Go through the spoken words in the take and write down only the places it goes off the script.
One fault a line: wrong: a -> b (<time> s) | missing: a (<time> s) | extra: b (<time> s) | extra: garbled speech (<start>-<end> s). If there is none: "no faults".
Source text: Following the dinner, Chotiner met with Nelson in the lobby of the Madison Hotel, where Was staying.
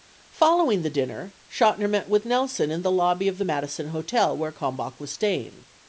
extra: Kalmbach (4.5 s)